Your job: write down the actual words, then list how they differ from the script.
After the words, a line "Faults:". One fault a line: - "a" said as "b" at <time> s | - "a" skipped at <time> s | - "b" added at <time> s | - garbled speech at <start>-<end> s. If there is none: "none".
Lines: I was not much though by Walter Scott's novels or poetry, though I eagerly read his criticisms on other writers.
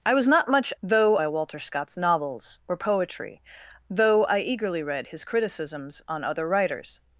I was not much though by Walter Scott's novels or poetry, though I eagerly read his criticisms on other writers.
Faults:
none